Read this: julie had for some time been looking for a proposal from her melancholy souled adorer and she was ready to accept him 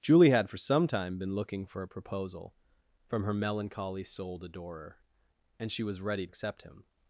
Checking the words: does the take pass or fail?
fail